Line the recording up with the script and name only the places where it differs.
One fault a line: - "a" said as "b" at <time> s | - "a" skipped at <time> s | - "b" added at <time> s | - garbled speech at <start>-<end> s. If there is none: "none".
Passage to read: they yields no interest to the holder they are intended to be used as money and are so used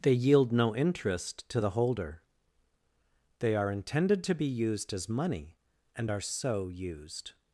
- "yields" said as "yield" at 0.1 s